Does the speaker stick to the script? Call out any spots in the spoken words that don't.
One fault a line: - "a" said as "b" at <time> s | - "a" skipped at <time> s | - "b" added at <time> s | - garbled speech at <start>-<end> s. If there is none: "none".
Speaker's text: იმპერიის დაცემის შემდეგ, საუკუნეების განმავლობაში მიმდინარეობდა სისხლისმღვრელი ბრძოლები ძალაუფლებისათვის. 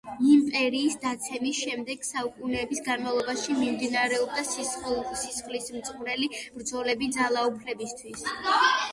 none